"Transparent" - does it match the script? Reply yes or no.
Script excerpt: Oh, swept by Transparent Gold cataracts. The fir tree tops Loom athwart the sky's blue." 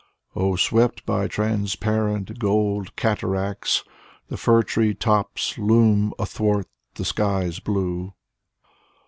yes